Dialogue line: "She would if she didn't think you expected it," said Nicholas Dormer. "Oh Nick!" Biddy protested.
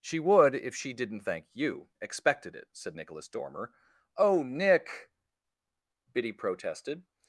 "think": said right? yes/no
no